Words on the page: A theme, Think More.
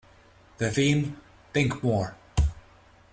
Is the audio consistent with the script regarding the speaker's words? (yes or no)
no